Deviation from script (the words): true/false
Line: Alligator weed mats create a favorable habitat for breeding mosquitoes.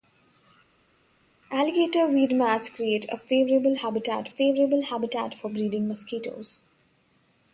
true